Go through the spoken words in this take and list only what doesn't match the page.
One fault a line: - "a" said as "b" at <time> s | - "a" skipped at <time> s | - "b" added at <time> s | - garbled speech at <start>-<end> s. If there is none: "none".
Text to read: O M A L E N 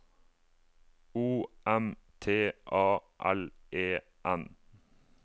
- "T" added at 2.2 s